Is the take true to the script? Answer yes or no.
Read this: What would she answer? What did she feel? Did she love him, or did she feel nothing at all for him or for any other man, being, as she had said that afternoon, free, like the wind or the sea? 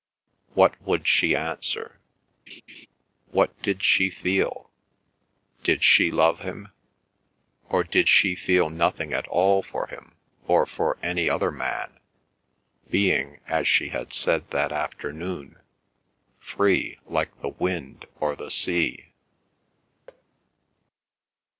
yes